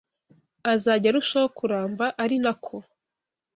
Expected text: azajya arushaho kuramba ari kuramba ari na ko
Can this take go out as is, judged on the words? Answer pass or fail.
fail